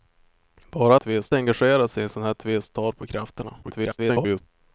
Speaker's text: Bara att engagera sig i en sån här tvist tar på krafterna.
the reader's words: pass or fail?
fail